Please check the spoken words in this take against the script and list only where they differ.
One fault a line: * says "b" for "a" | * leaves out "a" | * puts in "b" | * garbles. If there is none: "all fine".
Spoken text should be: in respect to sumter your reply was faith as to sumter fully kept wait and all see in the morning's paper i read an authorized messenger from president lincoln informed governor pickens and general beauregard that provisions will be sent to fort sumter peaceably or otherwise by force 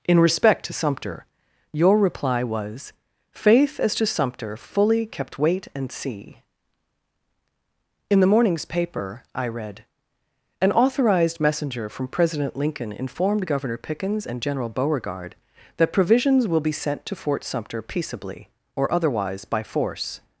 * leaves out "all"